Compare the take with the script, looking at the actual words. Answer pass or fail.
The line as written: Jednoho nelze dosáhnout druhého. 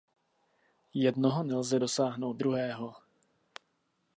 pass